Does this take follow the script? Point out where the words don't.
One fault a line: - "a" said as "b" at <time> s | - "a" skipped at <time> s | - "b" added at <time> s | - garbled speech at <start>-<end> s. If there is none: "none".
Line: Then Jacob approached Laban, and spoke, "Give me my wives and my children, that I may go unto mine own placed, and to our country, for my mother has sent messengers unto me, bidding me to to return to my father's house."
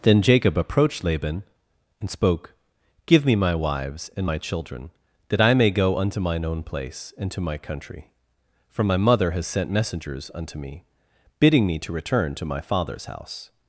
- "placed" said as "place" at 6.6 s
- "our" said as "my" at 7.4 s
- "to" skipped at 11.9 s